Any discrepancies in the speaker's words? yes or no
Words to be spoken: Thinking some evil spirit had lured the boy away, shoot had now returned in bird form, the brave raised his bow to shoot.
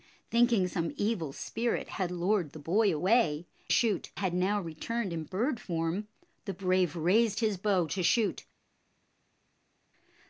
no